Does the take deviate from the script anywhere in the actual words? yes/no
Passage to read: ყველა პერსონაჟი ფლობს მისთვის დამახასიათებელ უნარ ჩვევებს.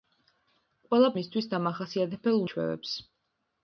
yes